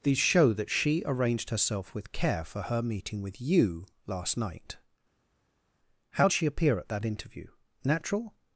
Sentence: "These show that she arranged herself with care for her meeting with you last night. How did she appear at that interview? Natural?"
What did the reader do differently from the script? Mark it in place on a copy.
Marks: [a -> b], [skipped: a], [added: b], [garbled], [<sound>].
"These show that she arranged herself with care for her meeting with you last night. How [skipped: did] she appear at that interview? Natural?"